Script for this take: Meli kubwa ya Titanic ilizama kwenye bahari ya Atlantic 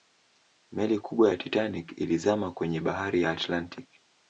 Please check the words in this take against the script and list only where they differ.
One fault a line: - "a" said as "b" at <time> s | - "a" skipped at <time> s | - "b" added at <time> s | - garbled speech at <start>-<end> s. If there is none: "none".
none